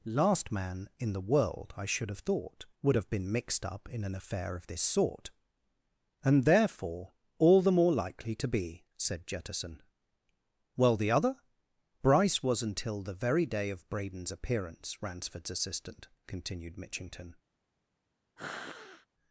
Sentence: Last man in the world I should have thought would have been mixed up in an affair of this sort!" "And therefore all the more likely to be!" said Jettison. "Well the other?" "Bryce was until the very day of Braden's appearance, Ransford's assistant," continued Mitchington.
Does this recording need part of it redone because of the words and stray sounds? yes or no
yes